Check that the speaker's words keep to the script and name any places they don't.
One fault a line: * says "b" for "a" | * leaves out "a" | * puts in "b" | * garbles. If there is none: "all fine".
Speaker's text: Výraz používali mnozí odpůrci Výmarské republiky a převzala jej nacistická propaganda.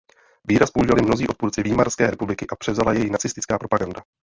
all fine